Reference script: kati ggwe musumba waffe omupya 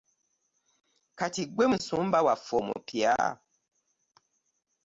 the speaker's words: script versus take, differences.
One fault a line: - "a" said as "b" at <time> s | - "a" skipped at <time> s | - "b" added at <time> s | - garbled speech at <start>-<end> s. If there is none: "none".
none